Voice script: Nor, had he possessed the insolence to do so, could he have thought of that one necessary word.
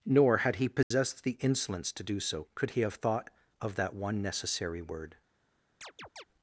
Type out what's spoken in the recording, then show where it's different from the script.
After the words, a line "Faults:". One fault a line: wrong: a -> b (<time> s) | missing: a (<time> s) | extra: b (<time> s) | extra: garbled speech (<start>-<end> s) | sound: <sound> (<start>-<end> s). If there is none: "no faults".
Nor, had he possessed the insolence to do so, could he have thought of that one necessary word.
Faults:
sound: dropout (0.8-0.9 s)
sound: chirp (5.8-6.2 s)